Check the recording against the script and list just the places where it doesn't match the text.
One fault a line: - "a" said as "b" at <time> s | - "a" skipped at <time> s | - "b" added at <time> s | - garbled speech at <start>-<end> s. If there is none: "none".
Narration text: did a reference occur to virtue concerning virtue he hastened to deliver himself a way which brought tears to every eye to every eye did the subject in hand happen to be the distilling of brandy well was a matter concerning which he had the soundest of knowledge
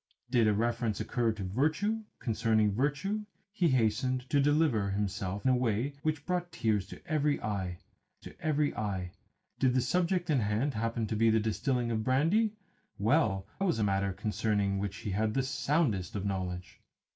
none